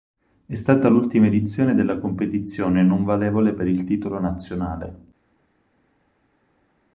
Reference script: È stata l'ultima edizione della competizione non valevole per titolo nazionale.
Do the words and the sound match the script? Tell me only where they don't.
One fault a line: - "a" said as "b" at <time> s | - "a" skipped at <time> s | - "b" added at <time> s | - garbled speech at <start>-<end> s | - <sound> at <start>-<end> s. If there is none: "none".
- "il" added at 3.7 s